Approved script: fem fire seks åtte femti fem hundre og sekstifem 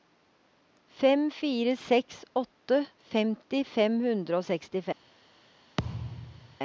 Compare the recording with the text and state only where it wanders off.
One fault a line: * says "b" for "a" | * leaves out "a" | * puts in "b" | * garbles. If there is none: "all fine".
all fine